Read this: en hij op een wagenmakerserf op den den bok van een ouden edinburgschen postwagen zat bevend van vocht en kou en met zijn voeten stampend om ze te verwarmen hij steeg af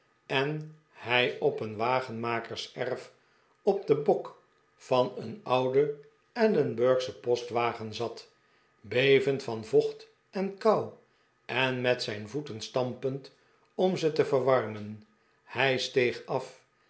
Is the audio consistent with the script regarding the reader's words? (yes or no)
no